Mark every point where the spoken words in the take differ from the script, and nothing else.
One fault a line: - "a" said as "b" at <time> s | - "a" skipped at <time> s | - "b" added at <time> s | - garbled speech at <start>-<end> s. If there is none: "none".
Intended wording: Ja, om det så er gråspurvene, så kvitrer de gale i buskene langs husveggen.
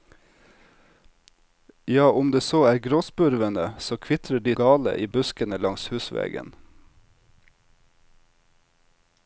none